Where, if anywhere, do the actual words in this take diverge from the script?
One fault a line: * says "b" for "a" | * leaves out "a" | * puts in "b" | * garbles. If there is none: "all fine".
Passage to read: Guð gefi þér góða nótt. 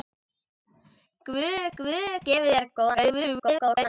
* puts in "guð"
* garbles